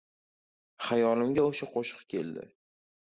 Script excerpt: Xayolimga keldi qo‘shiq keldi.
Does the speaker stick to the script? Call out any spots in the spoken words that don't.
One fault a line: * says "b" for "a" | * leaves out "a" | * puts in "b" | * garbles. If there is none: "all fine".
* says "o‘sha" for "keldi"